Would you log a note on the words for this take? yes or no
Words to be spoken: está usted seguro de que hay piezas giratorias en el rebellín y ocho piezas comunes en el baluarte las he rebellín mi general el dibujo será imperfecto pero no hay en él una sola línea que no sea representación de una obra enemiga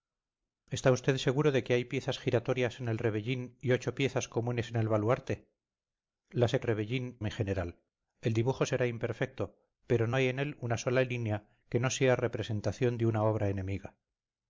no